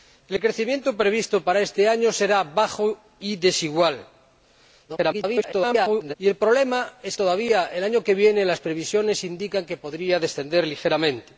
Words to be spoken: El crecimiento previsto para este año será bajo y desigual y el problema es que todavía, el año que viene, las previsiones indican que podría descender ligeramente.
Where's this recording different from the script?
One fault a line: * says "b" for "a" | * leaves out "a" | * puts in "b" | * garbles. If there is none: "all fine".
* garbles
* leaves out "que"